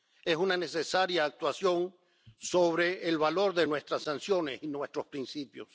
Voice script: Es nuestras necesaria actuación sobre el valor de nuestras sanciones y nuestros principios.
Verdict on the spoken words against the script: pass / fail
fail